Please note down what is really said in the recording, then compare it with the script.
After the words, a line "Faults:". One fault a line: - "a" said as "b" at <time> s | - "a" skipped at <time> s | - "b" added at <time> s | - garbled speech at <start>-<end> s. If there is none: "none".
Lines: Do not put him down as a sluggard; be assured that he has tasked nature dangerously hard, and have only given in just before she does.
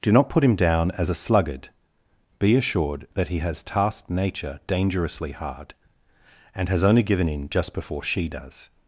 Do not put him down as a sluggard; be assured that he has tasked nature dangerously hard, and has only given in just before she does.
Faults:
- "have" said as "has" at 6.7 s